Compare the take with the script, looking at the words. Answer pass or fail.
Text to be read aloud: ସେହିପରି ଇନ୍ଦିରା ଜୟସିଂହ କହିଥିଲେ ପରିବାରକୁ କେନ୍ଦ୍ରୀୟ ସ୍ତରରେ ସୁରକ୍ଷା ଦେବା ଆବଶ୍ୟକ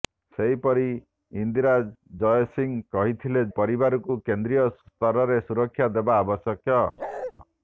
pass